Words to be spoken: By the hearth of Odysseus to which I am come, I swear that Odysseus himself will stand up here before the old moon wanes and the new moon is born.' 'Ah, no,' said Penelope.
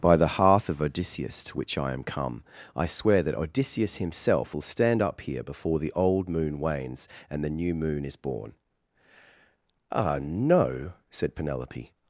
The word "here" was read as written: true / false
true